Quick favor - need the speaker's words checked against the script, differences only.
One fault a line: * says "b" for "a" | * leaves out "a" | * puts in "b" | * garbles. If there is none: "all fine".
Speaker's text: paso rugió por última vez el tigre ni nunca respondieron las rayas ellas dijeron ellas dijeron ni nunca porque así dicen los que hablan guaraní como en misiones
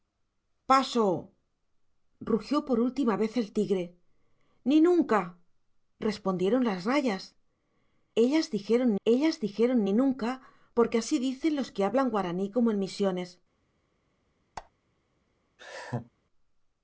all fine